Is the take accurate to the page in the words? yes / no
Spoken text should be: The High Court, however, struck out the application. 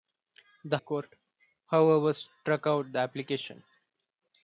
no